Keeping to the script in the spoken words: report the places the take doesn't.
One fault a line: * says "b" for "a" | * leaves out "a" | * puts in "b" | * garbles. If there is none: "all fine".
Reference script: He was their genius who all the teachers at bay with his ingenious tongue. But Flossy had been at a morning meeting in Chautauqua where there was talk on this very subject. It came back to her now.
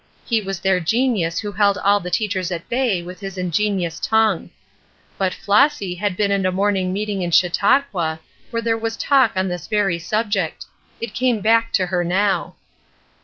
* puts in "held"